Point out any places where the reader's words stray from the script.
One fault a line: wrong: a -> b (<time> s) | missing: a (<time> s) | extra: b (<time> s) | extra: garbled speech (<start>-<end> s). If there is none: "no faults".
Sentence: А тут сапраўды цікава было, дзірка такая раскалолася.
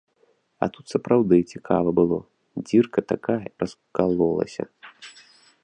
no faults